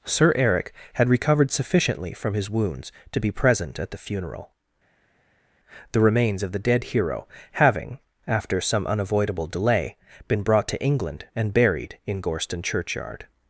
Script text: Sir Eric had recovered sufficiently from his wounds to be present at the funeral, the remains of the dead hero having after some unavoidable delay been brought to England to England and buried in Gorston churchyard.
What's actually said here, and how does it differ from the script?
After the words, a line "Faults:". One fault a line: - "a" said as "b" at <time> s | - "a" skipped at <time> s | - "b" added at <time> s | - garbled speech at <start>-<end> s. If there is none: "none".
Sir Eric had recovered sufficiently from his wounds to be present at the funeral, the remains of the dead hero having after some unavoidable delay been brought to England and buried in Gorston churchyard.
Faults:
- "to England" skipped at 11.2 s